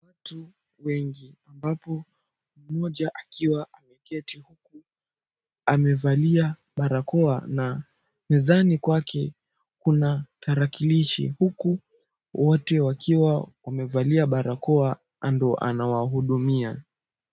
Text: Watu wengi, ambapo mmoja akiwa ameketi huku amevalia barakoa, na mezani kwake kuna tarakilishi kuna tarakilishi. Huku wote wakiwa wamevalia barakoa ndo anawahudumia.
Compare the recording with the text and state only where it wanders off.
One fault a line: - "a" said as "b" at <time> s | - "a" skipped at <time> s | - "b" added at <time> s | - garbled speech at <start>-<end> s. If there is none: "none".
- "kuna tarakilishi" skipped at 11.3 s